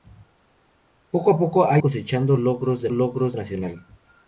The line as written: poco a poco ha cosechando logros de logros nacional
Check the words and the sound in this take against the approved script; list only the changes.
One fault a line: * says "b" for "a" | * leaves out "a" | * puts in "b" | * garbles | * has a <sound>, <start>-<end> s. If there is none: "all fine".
all fine